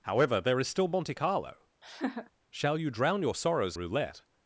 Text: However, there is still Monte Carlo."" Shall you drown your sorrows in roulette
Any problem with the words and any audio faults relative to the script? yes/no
yes